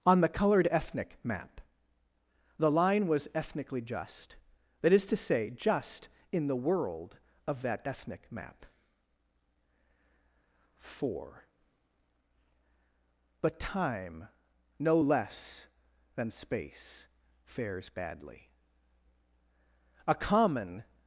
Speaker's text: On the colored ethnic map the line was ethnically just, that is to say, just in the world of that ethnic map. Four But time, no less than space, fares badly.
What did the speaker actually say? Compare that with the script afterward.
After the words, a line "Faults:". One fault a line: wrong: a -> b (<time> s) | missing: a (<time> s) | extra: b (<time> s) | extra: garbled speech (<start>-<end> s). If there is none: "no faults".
On the colored ethnic map the line was ethnically just, that is to say, just in the world of that ethnic map. Four But time, no less than space, fares badly. A common
Faults:
extra: A common (20.1 s)